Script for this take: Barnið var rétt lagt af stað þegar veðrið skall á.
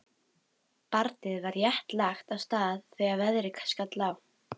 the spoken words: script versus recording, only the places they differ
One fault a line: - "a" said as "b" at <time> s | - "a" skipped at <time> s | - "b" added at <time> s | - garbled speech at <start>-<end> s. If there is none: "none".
none